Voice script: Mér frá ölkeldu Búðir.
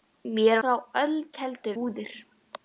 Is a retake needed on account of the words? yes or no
no